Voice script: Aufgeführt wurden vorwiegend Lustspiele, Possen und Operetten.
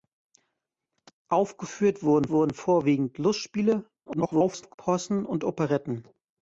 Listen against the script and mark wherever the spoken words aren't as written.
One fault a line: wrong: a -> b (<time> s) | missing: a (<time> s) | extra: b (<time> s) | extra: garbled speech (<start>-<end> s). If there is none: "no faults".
extra: wurden (2.3 s)
extra: garbled speech (4.1-4.7 s)